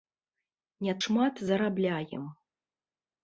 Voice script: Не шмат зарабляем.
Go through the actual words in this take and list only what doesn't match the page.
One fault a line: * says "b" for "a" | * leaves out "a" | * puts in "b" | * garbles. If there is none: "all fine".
all fine